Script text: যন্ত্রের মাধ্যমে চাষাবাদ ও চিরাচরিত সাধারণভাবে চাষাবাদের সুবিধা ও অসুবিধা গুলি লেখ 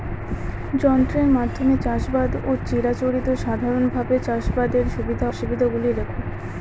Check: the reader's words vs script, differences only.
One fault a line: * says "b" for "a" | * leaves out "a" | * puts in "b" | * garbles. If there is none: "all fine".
* leaves out "ও"